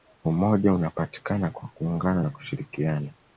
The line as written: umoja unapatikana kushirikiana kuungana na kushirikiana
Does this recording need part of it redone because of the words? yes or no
yes